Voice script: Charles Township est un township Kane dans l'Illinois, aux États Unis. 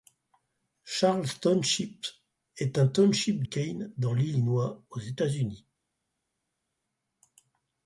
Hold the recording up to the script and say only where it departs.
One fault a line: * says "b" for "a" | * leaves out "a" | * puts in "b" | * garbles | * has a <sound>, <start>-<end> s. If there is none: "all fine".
all fine